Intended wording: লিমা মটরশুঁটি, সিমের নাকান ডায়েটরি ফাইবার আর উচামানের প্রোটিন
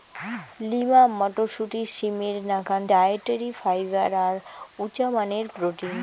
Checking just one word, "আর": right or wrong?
right